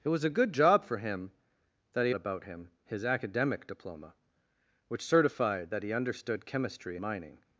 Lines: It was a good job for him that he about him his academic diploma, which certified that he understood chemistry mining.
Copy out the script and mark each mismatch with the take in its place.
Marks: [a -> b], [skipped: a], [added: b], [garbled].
It was a good job for him that he about him his academic diploma, which certified that he understood chemistry mining.